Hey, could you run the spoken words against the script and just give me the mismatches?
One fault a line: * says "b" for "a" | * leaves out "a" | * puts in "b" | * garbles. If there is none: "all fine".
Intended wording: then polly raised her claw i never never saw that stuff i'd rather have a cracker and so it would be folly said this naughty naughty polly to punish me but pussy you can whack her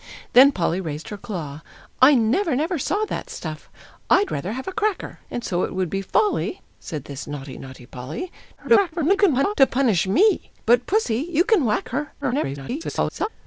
* garbles
* garbles